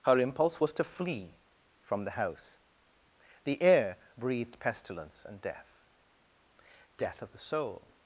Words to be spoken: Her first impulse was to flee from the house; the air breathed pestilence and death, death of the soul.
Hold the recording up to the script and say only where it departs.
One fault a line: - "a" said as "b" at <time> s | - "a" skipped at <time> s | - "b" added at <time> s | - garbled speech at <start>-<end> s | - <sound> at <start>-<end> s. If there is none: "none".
- "first" skipped at 0.2 s